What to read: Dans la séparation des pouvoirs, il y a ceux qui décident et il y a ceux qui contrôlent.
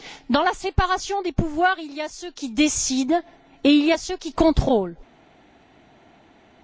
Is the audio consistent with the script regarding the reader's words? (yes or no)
yes